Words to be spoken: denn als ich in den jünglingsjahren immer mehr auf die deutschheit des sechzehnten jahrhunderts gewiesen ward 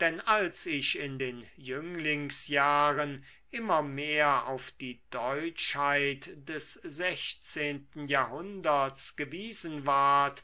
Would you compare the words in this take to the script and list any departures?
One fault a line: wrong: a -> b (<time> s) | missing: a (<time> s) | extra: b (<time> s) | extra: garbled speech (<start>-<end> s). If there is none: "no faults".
no faults